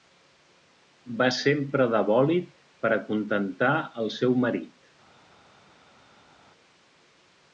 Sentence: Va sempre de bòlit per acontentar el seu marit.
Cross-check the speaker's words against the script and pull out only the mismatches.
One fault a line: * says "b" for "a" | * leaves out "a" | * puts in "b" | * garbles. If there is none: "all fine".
all fine